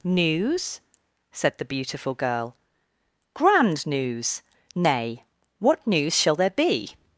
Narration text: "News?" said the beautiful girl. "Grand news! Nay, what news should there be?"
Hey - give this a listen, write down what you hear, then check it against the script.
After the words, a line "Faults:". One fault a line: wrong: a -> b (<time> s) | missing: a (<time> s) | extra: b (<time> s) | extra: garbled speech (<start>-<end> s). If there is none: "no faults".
"News?" said the beautiful girl. "Grand news! Nay, what news shall there be?"
Faults:
wrong: should -> shall (6.1 s)